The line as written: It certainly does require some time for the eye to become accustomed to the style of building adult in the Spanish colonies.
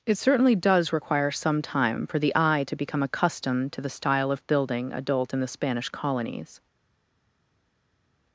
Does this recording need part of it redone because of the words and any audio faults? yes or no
no